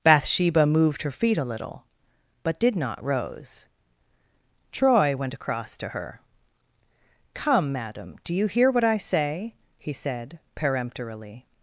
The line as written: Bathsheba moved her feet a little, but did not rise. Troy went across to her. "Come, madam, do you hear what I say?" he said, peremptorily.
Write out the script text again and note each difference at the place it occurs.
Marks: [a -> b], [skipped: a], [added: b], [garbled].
Bathsheba moved her feet a little, but did not [rise. -> rose] Troy went across to her. "Come, madam, do you hear what I say?" he said, peremptorily.